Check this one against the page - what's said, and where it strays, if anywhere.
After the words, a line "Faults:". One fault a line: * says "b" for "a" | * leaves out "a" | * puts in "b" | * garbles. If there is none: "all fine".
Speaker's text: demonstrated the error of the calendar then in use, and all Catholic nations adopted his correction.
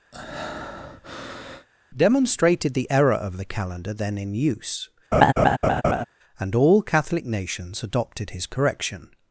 demonstrated the error of the calendar then in use, and all Catholic nations adopted his correction.
Faults:
all fine